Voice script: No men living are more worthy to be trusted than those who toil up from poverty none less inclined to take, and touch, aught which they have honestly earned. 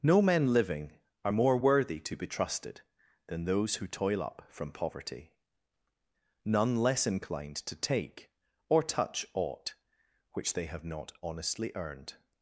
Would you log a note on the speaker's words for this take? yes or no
yes